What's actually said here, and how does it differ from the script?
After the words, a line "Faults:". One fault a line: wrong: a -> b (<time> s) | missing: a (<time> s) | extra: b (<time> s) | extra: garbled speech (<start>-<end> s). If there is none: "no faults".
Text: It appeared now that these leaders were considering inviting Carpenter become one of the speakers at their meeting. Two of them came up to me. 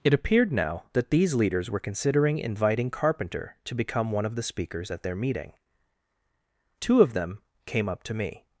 It appeared now that these leaders were considering inviting Carpenter to become one of the speakers at their meeting. Two of them came up to me.
Faults:
extra: to (3.6 s)